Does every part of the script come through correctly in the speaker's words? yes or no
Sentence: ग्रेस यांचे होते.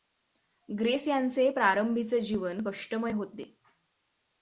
no